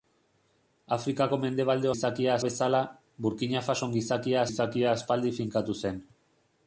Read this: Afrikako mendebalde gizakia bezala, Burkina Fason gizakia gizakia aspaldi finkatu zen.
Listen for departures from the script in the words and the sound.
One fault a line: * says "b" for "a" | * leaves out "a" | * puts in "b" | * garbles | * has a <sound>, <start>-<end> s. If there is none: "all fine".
all fine